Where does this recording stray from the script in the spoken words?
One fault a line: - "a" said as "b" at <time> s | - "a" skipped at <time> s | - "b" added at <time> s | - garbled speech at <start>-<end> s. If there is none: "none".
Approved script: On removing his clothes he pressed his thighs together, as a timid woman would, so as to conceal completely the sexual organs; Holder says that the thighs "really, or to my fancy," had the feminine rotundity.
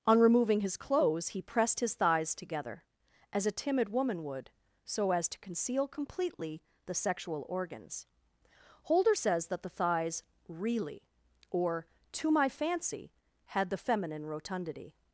none